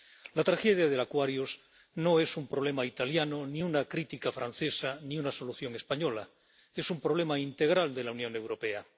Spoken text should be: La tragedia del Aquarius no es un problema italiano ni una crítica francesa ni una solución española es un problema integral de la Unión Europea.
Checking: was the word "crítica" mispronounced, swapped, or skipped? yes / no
no